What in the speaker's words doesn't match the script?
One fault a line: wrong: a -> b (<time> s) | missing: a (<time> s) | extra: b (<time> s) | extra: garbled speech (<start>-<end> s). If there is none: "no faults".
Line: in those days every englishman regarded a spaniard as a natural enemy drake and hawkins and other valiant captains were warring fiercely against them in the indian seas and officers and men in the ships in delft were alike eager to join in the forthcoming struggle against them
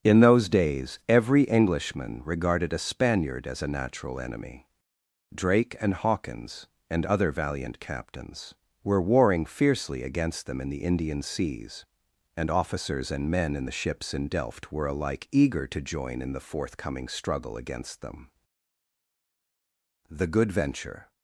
extra: the good venture (20.1 s)